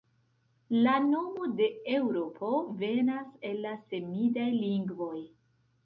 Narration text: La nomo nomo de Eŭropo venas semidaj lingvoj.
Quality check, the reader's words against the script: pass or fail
fail